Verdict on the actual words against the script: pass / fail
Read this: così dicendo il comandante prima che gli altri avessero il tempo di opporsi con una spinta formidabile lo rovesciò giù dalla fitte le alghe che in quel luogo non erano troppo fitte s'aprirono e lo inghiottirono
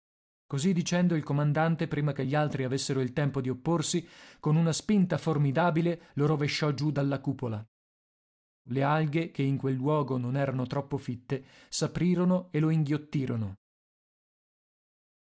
fail